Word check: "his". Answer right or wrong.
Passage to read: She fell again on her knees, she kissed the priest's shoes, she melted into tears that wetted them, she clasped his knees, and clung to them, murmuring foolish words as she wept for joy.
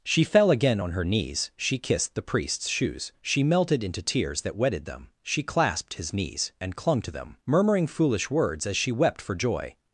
right